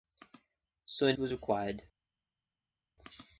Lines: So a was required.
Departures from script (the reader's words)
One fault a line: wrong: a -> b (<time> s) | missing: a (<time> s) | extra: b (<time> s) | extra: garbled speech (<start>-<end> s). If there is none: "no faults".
no faults